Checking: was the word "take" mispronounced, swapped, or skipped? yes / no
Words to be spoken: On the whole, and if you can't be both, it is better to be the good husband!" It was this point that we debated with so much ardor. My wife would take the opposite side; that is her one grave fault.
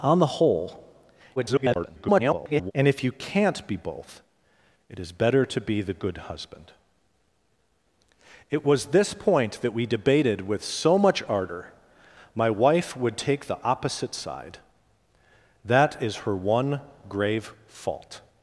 no